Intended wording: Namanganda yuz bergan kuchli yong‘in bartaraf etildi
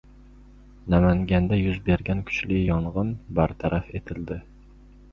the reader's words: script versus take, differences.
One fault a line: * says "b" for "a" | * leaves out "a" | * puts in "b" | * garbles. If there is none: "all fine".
all fine